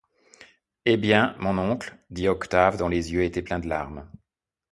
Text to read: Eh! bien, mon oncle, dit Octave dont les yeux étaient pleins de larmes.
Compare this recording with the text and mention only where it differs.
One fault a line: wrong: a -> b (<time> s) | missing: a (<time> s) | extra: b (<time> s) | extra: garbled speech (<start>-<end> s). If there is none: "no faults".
no faults